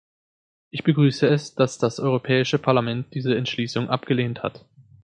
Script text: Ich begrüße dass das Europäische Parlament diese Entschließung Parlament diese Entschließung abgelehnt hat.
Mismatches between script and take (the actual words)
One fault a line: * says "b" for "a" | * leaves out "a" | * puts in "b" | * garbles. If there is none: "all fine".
* puts in "es"
* leaves out "Parlament diese Entschließung"